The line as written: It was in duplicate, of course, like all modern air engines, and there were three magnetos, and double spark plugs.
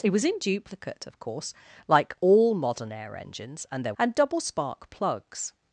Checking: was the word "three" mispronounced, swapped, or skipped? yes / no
yes